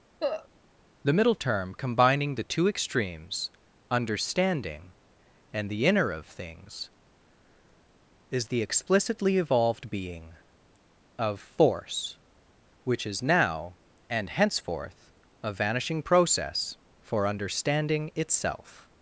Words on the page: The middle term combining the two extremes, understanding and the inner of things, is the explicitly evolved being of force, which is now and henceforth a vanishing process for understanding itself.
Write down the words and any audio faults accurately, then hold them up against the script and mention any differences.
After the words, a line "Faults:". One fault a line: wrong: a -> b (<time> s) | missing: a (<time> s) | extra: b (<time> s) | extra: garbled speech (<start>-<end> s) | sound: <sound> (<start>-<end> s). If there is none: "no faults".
The middle term combining the two extremes, understanding and the inner of things, is the explicitly evolved being of force, which is now and henceforth a vanishing process for understanding itself.
Faults:
sound: cough (0.2-0.5 s)